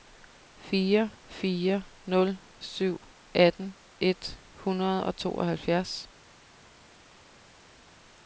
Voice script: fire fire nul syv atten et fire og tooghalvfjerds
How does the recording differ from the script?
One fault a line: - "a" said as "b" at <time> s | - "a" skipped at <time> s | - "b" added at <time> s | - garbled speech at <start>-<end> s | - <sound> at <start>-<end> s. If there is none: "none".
- "fire" said as "hundrede" at 4.5 s